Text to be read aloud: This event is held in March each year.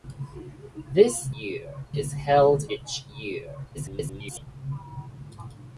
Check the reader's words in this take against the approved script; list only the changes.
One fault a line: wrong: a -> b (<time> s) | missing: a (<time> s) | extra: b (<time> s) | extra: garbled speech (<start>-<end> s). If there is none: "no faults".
wrong: event -> year (1.4 s)
missing: in March (2.6 s)
extra: garbled speech (3.7-4.5 s)